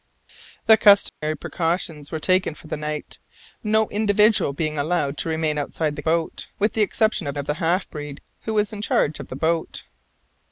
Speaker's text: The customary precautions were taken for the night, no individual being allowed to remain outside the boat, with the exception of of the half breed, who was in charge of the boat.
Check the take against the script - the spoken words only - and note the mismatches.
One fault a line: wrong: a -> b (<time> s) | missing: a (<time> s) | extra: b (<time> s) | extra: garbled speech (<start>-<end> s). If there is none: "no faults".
no faults